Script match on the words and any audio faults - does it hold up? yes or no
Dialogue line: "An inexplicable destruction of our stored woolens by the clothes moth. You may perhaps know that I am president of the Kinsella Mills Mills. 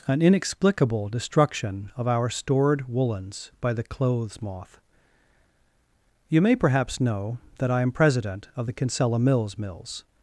yes